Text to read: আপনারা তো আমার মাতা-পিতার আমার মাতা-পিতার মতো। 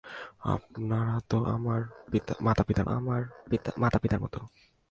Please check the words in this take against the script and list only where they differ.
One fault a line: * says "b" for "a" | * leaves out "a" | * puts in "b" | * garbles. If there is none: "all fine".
all fine